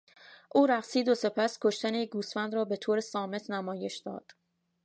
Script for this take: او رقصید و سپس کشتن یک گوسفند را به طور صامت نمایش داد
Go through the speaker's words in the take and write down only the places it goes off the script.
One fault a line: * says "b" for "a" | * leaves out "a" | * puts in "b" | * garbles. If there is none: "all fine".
all fine